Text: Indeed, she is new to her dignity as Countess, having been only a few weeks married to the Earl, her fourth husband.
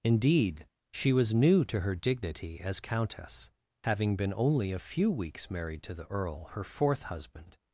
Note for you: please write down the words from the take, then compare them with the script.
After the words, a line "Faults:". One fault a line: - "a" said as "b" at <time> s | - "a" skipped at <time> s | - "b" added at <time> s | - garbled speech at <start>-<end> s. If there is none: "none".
Indeed, she was new to her dignity as Countess, having been only a few weeks married to the Earl, her fourth husband.
Faults:
- "is" said as "was" at 1.1 s